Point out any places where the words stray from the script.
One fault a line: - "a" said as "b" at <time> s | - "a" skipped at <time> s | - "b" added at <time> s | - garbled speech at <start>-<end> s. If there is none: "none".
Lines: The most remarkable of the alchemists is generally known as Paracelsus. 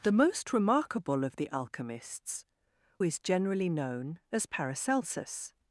none